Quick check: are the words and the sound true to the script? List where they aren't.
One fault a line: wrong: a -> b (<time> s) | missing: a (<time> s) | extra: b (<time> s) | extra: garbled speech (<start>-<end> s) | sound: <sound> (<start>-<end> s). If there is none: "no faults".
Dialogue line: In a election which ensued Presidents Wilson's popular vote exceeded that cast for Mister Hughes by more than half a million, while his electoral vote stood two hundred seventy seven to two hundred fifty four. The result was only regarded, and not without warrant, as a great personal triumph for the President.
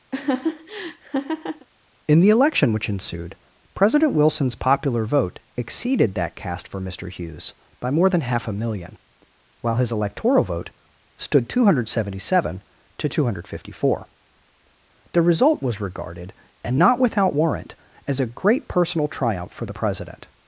sound: laugh (0.1-1.7 s)
wrong: a -> the (2.2 s)
wrong: Presidents -> President (3.7 s)
missing: only (15.8 s)